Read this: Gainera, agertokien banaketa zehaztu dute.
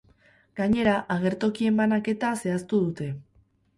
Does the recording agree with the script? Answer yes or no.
yes